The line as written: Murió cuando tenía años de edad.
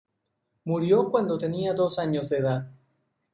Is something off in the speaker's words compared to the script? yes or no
yes